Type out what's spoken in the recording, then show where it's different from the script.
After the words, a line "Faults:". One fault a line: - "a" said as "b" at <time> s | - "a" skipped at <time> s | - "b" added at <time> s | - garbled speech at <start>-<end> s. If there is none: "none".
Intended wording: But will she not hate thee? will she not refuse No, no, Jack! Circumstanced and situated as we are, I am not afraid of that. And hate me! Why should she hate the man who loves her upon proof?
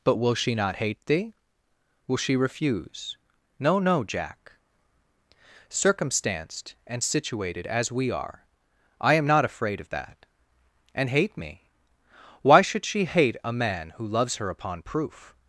But will she not hate thee? will she refuse No, no, Jack! Circumstanced and situated as we are, I am not afraid of that. And hate me! Why should she hate a man who loves her upon proof?
Faults:
- "not" skipped at 2.4 s
- "the" said as "a" at 13.4 s